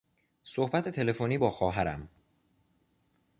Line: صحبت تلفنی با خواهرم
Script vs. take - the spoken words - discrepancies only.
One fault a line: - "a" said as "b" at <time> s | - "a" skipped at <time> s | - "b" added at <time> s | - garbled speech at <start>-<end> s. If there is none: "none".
none